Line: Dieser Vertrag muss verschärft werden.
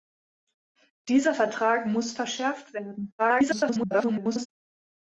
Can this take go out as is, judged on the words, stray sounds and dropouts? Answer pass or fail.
fail